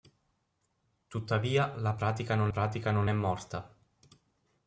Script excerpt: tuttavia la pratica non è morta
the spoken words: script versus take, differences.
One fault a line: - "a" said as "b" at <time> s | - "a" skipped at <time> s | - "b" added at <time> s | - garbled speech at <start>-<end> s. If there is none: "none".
- "pratica non" added at 2.5 s